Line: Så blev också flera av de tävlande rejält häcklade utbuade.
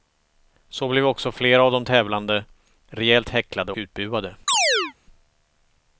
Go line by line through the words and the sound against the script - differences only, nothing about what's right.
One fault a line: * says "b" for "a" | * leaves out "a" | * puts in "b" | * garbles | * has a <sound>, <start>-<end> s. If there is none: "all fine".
* has a chirp, 4.5-4.9 s